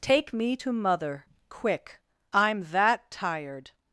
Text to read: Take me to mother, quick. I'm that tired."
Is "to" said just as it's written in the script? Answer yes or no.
yes